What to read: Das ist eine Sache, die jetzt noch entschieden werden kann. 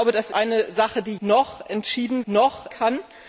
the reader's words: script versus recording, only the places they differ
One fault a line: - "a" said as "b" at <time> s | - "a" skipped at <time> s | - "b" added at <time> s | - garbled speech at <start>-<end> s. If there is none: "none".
- "ist" skipped at 0.3 s
- "jetzt" skipped at 1.2 s
- "werden" said as "noch" at 2.3 s